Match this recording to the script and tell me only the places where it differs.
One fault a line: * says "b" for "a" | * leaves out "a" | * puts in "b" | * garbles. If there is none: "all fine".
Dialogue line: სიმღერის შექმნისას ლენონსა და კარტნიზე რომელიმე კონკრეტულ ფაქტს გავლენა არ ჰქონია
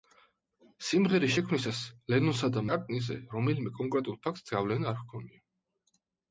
all fine